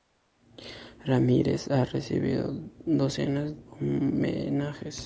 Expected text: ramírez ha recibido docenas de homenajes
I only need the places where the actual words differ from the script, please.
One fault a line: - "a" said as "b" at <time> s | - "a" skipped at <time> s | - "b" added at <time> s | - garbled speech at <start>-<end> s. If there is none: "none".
- "de" skipped at 3.6 s